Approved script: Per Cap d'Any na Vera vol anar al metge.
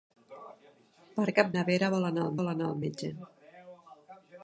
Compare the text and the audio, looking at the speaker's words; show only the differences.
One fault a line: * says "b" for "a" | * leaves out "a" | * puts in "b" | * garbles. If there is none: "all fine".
* leaves out "d'Any"
* puts in "vol anar al"